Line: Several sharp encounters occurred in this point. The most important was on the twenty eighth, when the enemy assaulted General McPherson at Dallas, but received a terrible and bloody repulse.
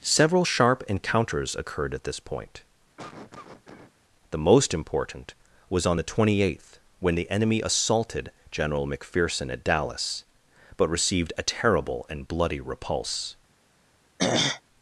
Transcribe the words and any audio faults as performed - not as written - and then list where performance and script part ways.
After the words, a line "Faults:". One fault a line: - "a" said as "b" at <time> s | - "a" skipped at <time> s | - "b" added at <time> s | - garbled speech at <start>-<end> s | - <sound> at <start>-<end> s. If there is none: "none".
Several sharp encounters occurred at this point. The most important was on the twenty eighth, when the enemy assaulted General McPherson at Dallas, but received a terrible and bloody repulse.
Faults:
- "in" said as "at" at 1.9 s
- cough at 3.0-3.9 s
- throat clearing at 14.2-14.6 s